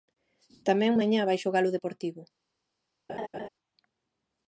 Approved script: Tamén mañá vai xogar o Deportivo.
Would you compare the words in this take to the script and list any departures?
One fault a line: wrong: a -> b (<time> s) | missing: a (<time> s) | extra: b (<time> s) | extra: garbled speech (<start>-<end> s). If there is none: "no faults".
no faults